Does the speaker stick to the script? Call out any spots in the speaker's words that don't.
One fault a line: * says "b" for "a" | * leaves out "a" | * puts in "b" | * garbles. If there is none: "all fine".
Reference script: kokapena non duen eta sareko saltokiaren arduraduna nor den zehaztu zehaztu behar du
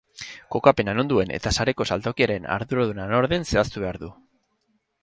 * leaves out "zehaztu"